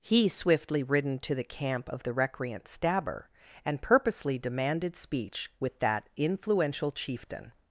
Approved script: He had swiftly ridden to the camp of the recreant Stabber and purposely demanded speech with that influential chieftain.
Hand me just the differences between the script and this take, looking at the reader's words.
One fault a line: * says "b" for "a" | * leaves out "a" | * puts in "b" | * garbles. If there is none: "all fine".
* leaves out "had"